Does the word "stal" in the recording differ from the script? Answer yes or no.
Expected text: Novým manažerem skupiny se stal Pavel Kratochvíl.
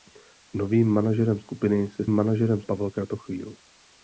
yes